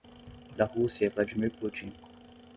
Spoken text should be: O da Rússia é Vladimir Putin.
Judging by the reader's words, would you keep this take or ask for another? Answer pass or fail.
pass